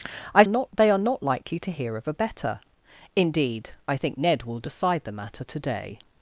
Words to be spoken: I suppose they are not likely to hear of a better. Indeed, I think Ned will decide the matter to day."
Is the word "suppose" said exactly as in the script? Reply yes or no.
no